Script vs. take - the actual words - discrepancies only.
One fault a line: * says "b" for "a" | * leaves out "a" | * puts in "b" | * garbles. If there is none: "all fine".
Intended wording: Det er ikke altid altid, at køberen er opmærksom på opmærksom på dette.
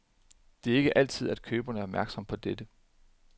* leaves out "altid"
* leaves out "opmærksom på"